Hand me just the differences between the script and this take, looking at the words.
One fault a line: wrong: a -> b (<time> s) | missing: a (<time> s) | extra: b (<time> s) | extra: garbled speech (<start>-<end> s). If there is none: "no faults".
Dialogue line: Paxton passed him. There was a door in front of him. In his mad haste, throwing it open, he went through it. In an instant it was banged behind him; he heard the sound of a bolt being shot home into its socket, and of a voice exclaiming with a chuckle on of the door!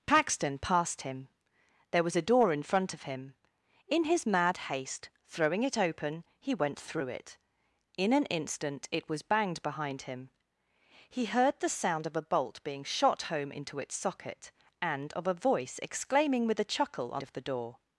no faults